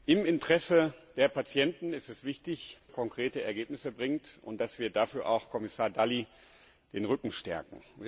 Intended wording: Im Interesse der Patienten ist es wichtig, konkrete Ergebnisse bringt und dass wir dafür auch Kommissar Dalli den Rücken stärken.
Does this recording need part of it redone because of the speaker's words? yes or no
no